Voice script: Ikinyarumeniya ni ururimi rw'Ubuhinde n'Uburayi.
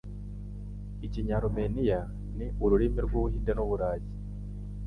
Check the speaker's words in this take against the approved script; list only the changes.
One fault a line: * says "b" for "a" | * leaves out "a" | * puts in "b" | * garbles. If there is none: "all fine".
all fine